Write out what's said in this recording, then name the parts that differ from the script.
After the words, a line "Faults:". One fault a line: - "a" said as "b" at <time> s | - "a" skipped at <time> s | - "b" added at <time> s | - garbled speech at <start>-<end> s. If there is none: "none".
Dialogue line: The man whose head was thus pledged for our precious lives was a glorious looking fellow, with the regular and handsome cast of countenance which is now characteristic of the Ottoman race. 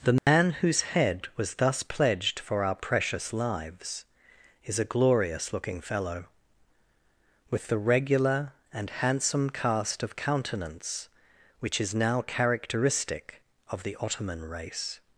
The man whose head was thus pledged for our precious lives is a glorious looking fellow, with the regular and handsome cast of countenance which is now characteristic of the Ottoman race.
Faults:
- "was" said as "is" at 4.6 s